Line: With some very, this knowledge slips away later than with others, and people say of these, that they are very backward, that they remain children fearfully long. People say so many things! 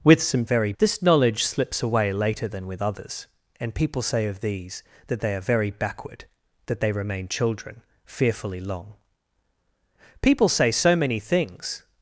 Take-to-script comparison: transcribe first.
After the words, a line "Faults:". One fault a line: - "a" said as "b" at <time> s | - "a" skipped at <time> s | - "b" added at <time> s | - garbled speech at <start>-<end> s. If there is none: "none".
With some very, this knowledge slips away later than with others, and people say of these, that they are very backward, that they remain children fearfully long. People say so many things!
Faults:
none